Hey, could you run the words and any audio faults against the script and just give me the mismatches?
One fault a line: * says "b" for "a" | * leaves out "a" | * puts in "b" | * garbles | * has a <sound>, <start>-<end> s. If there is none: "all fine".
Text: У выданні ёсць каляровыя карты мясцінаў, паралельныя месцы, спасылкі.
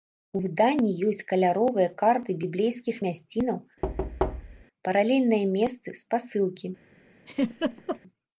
* puts in "біблейскіх"
* has a thud, 3.8-4.6 s
* has a laugh, 7.3-8.0 s